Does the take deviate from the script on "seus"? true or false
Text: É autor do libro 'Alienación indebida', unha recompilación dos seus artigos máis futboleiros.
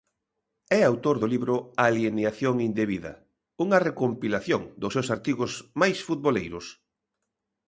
false